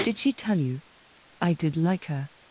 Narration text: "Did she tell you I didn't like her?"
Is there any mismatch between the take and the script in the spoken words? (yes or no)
yes